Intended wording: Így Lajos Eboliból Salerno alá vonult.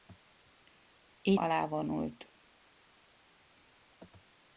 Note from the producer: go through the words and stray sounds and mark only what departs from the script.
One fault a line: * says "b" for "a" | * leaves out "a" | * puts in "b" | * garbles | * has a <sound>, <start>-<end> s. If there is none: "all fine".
* leaves out "Lajos Eboliból Salerno"